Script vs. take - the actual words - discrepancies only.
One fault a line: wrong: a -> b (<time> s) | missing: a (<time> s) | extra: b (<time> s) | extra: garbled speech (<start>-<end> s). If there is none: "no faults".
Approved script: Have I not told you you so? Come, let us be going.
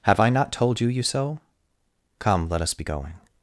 no faults